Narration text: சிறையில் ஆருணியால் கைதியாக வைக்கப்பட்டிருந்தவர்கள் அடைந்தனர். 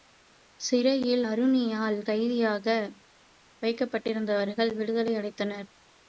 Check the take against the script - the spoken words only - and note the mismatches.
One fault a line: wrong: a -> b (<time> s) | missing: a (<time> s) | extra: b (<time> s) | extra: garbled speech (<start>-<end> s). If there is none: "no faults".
extra: விடுதலை (4.7 s)